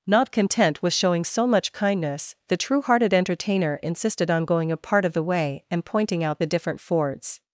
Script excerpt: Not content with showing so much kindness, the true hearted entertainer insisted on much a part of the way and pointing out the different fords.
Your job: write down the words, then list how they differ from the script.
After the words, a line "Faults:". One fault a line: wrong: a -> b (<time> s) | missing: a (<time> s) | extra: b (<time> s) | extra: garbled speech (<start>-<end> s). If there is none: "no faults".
Not content with showing so much kindness, the true hearted entertainer insisted on going a part of the way and pointing out the different fords.
Faults:
wrong: much -> going (4.5 s)